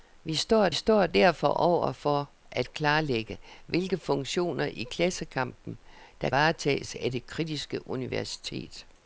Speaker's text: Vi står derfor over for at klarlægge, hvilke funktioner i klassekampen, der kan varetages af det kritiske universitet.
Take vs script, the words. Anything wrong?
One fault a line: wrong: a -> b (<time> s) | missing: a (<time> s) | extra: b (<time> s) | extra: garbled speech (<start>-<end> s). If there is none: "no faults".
extra: står (0.7 s)
missing: kan (6.3 s)